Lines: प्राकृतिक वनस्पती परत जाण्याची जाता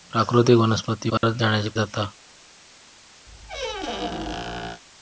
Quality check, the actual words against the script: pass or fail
pass